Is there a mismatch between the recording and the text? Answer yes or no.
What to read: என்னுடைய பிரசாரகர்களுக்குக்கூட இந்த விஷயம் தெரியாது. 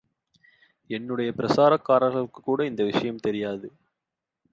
no